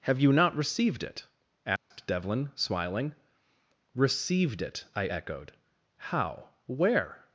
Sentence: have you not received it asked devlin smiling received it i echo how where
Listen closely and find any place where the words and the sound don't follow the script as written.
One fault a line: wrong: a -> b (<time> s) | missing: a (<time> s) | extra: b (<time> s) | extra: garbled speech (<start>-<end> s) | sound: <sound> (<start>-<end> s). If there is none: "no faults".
sound: dropout (1.8-1.9 s)
wrong: echo -> echoed (5.0 s)